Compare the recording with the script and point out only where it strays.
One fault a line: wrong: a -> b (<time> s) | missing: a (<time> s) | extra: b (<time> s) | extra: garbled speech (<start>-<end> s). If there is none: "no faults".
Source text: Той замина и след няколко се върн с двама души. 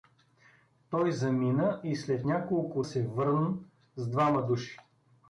no faults